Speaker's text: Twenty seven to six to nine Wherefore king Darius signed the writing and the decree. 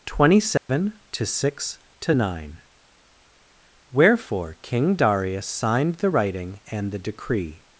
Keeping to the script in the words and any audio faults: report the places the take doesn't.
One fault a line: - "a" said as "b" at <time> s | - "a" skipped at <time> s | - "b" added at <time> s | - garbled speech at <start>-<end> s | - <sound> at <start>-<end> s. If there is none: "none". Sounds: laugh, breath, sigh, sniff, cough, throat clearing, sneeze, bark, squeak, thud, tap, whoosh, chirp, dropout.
- dropout at 0.6-0.7 s